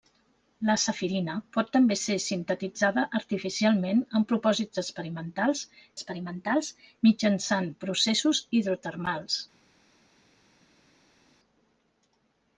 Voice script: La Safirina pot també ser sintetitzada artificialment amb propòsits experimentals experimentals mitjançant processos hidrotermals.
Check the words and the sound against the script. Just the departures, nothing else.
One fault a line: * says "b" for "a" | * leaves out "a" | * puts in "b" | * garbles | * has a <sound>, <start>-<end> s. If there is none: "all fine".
all fine